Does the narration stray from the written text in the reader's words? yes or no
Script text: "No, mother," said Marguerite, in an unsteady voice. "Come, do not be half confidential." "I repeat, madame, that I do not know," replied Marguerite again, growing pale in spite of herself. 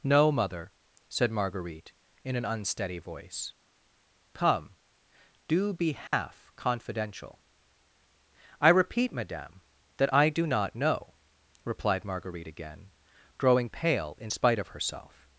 yes